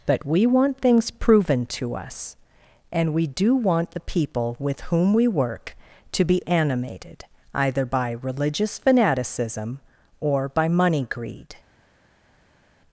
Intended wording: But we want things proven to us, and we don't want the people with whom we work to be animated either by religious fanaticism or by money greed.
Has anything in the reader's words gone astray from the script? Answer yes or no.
yes